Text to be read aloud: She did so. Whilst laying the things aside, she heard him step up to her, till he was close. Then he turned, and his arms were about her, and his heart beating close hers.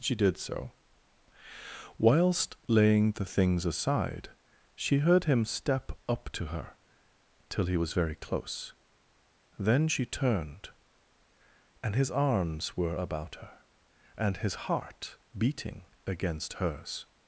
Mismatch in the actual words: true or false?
true